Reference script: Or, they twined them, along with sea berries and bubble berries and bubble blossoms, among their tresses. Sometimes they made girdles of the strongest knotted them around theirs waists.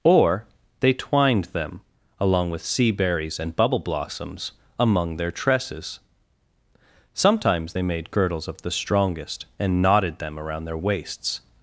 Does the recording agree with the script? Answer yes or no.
no